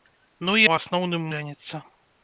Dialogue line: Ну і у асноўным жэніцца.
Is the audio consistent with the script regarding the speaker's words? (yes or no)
yes